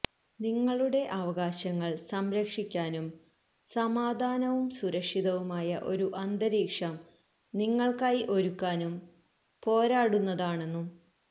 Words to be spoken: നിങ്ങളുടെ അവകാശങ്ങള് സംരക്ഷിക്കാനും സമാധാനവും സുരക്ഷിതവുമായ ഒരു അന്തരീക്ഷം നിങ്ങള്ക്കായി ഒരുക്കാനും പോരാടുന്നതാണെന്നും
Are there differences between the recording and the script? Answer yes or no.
no